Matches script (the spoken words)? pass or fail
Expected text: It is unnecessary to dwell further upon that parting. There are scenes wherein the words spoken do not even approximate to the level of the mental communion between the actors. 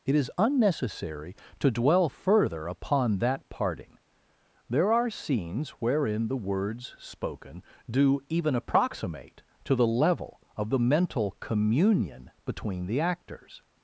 fail